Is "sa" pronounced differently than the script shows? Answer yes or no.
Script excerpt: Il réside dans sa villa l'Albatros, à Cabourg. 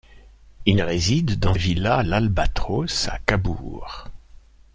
yes